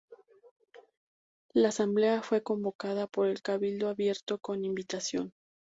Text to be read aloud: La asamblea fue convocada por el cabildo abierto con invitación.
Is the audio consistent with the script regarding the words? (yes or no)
yes